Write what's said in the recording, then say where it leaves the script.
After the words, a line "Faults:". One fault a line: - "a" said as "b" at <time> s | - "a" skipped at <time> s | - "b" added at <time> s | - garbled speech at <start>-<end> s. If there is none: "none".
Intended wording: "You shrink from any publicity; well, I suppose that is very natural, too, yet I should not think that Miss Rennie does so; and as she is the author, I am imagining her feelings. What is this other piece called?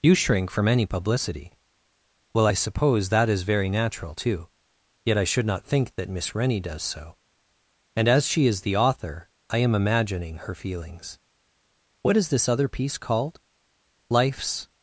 "You shrink from any publicity; well, I suppose that is very natural, too, yet I should not think that Miss Rennie does so; and as she is the author, I am imagining her feelings. What is this other piece called? 'Life's
Faults:
- "Life's" added at 14.1 s